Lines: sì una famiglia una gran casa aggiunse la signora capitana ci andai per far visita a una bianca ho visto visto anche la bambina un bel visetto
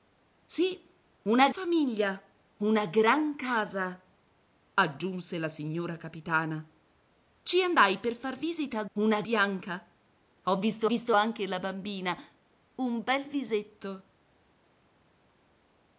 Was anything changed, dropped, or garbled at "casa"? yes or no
no